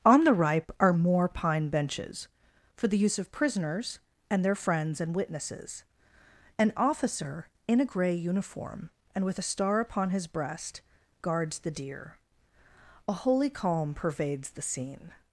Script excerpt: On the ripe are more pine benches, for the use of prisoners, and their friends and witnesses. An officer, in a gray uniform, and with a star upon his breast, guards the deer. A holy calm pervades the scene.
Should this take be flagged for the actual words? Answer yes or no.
no